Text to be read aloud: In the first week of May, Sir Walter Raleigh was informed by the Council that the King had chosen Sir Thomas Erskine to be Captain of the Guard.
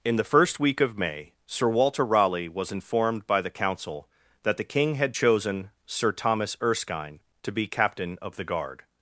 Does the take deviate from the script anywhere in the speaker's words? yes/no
no